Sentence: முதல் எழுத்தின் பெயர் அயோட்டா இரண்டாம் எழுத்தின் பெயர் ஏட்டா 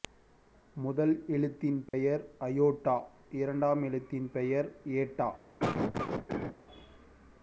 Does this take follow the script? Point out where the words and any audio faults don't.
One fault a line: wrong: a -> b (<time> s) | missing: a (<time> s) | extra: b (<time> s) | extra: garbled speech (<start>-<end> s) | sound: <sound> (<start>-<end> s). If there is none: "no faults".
sound: dropout (1.9-1.9 s)
sound: cough (5.6-6.6 s)